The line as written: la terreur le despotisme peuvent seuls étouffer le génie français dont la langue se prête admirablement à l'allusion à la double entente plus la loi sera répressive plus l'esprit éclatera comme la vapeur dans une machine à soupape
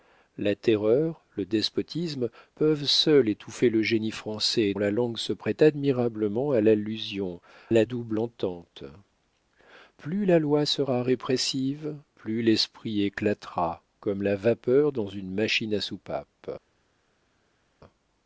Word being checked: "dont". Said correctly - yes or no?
no